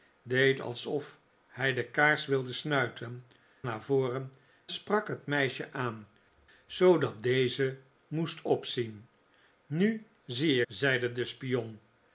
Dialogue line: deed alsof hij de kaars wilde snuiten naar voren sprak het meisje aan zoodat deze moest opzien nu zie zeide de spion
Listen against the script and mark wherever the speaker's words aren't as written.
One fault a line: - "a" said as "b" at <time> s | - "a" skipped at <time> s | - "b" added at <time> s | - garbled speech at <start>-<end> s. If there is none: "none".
none